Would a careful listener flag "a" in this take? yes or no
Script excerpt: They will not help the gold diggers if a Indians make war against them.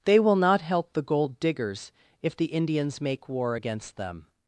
yes